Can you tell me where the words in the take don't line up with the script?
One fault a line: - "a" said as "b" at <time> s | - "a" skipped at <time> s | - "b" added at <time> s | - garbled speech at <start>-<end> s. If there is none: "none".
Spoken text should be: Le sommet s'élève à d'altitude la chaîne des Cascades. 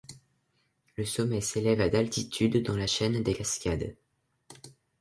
- "dans" added at 2.6 s